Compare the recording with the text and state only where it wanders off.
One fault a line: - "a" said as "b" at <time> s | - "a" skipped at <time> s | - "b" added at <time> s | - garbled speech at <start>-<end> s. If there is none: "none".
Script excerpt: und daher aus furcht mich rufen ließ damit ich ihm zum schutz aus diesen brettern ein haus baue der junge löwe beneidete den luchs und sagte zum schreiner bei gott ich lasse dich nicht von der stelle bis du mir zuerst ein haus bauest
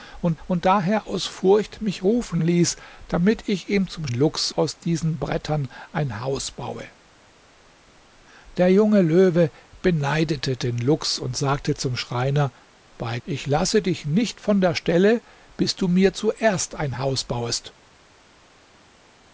- "und" added at 0.5 s
- "schutz" said as "luchs" at 4.1 s
- "gott" skipped at 13.2 s